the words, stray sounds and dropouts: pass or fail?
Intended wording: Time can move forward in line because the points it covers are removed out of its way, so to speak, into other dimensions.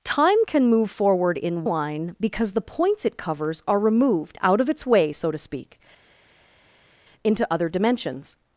pass